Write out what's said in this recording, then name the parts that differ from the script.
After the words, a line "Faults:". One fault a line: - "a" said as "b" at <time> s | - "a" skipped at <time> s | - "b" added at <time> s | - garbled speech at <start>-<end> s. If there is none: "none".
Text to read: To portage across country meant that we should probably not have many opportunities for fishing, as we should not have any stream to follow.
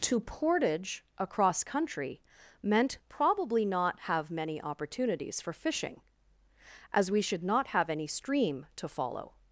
To portage across country meant probably not have many opportunities for fishing, as we should not have any stream to follow.
Faults:
- "that we should" skipped at 3.0 s